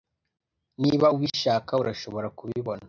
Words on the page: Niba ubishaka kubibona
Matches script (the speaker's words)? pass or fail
fail